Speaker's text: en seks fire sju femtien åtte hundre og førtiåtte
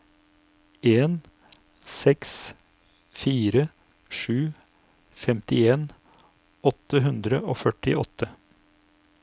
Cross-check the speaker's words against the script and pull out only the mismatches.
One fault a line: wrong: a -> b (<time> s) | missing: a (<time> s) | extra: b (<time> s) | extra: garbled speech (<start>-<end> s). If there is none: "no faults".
no faults